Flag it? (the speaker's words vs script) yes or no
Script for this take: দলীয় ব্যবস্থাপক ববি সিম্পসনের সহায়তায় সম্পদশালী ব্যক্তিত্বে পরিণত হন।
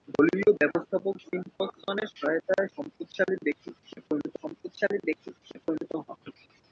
yes